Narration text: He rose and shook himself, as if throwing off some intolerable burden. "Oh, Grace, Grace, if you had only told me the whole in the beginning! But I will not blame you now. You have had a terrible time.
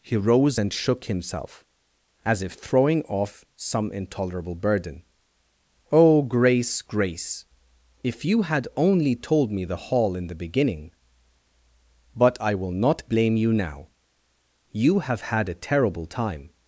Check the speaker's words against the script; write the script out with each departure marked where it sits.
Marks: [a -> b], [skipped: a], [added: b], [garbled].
He rose and shook himself, as if throwing off some intolerable burden. "Oh, Grace, Grace, if you had only told me the [whole -> hall] in the beginning! But I will not blame you now. You have had a terrible time.